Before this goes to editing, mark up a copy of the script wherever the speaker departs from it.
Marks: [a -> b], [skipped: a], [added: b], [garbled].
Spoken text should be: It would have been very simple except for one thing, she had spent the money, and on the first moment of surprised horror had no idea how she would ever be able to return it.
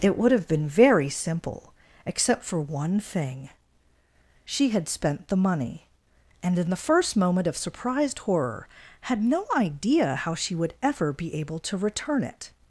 It would have been very simple except for one thing, she had spent the money, and [on -> in] the first moment of surprised horror had no idea how she would ever be able to return it.